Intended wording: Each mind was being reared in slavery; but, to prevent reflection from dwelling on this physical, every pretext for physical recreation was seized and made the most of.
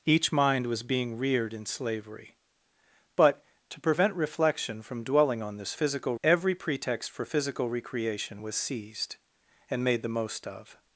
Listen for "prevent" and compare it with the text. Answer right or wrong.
right